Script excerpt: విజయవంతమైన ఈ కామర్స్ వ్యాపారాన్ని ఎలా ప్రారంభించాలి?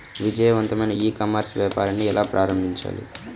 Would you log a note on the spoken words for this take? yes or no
no